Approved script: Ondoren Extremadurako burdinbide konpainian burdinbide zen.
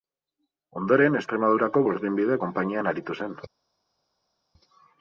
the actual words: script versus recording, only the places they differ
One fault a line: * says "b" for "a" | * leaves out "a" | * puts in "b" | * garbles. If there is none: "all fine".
* says "aritu" for "burdinbide"